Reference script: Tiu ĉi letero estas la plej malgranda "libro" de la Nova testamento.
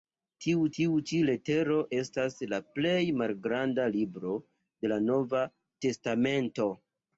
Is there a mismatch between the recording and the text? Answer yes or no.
yes